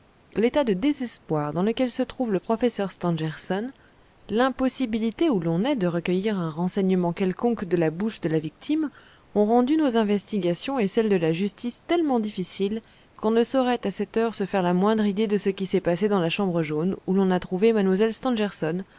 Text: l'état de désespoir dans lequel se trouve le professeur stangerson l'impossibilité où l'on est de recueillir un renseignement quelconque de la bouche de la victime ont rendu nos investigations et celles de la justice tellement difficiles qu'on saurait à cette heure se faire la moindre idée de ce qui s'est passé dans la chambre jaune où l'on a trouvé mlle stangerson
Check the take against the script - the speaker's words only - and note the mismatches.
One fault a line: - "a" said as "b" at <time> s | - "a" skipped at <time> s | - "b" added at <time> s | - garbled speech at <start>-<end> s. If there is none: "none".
- "ne" added at 13.3 s